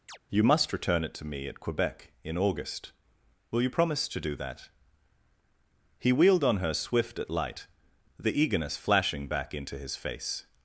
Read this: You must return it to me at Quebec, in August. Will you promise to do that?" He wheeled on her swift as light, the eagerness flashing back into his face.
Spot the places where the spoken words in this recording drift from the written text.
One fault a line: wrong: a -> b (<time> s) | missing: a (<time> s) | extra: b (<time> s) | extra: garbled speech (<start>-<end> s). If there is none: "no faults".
wrong: as -> at (7.2 s)